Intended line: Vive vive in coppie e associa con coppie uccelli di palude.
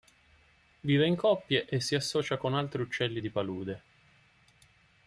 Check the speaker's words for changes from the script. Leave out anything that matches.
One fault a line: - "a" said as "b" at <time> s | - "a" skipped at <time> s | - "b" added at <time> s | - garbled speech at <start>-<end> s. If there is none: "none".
- "vive" skipped at 1.1 s
- "si" added at 1.8 s
- "coppie" said as "altri" at 2.5 s